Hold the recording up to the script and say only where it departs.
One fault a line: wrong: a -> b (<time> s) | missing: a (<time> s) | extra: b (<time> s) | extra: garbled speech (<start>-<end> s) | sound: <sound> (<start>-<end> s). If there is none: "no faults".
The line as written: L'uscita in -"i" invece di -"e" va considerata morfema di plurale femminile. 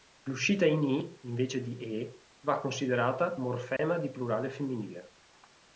sound: dropout (3.8-3.8 s)